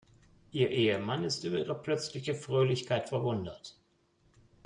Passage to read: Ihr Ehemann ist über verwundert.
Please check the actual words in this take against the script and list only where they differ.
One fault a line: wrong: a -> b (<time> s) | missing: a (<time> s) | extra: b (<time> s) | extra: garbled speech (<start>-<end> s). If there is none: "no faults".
extra: ihre plötzliche Fröhlichkeit (1.6 s)